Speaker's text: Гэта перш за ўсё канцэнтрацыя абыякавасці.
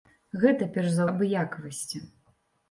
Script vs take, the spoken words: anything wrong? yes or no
yes